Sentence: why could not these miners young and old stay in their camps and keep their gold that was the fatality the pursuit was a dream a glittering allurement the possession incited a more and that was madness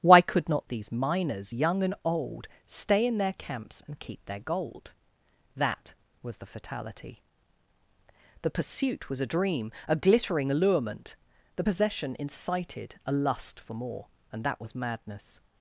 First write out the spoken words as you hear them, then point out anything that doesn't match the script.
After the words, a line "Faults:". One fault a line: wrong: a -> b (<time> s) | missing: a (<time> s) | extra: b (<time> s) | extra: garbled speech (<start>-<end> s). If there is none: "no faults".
why could not these miners young and old stay in their camps and keep their gold that was the fatality the pursuit was a dream a glittering allurement the possession incited a lust for more and that was madness
Faults:
extra: lust for (13.1 s)